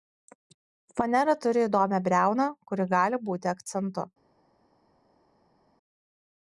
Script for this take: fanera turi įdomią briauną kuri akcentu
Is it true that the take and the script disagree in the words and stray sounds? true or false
true